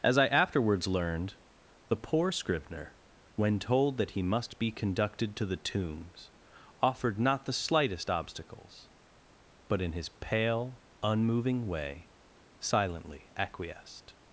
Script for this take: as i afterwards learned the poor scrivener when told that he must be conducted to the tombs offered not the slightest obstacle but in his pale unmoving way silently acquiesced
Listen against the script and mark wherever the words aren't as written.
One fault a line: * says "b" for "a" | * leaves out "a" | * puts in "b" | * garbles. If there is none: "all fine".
* says "obstacles" for "obstacle"